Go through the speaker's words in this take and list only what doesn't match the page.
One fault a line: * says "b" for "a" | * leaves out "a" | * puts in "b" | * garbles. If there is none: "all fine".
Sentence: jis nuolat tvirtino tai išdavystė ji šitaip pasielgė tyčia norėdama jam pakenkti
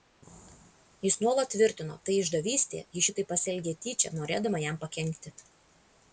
all fine